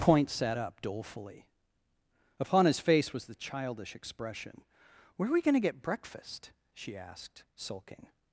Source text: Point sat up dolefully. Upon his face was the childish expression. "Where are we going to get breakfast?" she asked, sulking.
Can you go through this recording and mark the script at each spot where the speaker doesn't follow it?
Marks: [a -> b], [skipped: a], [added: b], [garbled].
Point sat up dolefully. Upon his face was the childish expression. "Where are we going to get breakfast?" she asked, sulking.